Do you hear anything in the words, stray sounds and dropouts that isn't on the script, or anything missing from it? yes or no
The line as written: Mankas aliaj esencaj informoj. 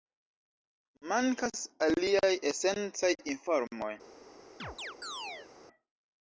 yes